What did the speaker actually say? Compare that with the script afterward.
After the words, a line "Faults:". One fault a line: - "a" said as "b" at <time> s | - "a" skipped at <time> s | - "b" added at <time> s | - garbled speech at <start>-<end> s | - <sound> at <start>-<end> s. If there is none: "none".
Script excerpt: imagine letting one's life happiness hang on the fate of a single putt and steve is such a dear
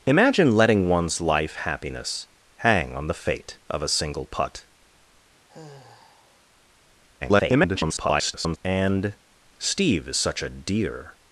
imagine letting one's life happiness hang on the fate of a single putt [garbled] and steve is such a dear
Faults:
- sigh at 5.5-6.4 s
- garbled speech at 7.2-8.6 s